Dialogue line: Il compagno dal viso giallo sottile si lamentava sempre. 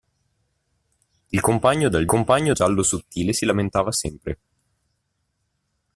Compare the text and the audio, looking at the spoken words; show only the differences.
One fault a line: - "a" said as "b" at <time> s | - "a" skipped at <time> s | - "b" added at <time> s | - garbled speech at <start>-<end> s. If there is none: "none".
- "viso" said as "compagno" at 2.1 s